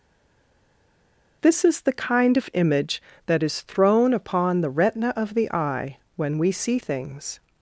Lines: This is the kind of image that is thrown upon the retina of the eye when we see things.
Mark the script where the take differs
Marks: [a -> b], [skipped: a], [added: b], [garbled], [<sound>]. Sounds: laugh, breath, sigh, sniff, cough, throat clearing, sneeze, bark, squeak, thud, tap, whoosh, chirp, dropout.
This is the kind of image that is thrown upon the retina of the eye when we see things.